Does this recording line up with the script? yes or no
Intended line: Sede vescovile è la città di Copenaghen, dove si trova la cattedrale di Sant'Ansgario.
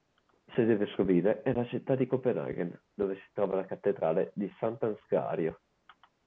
yes